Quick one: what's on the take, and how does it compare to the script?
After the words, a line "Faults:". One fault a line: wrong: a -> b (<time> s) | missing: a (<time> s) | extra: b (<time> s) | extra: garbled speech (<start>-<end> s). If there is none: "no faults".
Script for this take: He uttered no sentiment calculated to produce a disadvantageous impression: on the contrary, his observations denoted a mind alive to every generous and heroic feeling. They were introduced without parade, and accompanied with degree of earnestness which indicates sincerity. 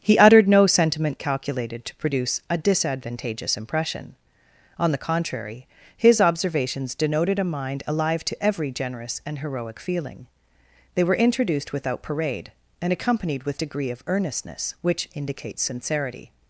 He uttered no sentiment calculated to produce a disadvantageous impression: on the contrary, his observations denoted a mind alive to every generous and heroic feeling. They were introduced without parade, and accompanied with degree of earnestness which indicates sincerity.
Faults:
no faults